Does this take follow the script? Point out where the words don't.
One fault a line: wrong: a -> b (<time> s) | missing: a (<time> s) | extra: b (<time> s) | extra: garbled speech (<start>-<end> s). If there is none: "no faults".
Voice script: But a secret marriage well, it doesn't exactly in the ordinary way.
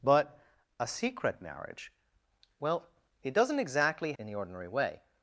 no faults